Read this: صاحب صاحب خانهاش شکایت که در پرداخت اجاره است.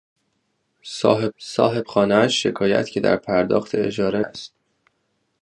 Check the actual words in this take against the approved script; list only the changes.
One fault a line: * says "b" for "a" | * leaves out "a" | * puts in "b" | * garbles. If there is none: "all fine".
all fine